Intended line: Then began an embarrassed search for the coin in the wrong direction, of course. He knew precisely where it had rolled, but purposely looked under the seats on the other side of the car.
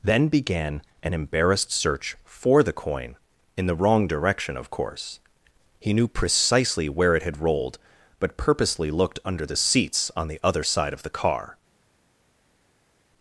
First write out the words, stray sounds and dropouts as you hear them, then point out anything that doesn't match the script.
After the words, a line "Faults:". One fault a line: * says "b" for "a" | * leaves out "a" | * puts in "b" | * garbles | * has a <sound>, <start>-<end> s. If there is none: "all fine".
Then began an embarrassed search for the coin in the wrong direction, of course. He knew precisely where it had rolled, but purposely looked under the seats on the other side of the car.
Faults:
all fine